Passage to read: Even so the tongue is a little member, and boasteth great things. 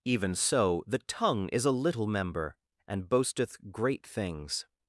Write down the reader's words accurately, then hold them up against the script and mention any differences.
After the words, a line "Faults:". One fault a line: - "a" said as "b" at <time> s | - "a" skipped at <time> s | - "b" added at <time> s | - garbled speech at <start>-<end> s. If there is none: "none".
Even so the tongue is a little member, and boasteth great things.
Faults:
none